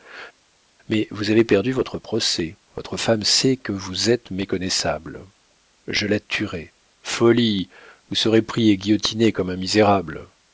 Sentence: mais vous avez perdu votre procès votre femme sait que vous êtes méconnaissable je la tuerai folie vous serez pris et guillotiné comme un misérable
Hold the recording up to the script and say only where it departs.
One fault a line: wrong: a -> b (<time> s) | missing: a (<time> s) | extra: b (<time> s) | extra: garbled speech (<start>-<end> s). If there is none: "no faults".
no faults